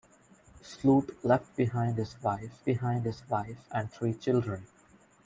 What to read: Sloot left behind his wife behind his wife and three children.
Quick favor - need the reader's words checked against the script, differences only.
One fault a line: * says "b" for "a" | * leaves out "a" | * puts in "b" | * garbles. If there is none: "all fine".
all fine